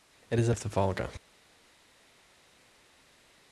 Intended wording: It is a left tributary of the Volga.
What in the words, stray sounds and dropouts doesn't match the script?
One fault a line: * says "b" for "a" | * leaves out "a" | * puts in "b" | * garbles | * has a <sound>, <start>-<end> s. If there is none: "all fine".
* leaves out "left tributary"